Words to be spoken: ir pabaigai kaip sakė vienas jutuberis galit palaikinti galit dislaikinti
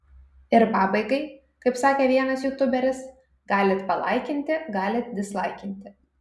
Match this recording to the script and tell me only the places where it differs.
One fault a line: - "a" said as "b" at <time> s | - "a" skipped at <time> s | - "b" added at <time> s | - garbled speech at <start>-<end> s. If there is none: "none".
none